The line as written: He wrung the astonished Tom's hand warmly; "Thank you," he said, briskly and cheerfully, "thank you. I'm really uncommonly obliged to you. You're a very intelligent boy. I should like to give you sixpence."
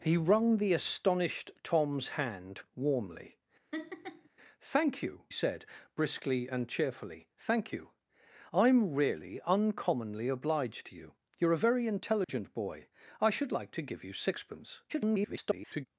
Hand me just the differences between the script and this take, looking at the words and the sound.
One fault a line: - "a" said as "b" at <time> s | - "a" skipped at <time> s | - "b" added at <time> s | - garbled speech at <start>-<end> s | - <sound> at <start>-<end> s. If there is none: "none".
- laugh at 3.7-4.3 s
- "he" skipped at 5.2 s
- dropout at 12.2-12.3 s
- garbled speech at 14.9-15.9 s